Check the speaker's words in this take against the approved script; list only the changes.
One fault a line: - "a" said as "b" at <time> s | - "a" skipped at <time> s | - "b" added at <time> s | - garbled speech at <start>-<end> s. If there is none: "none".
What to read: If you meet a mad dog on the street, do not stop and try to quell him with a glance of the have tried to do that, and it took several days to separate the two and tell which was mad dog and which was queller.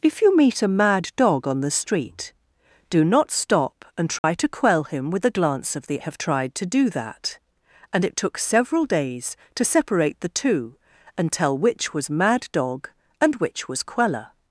none